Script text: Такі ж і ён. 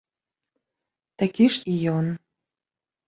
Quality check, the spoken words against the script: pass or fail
pass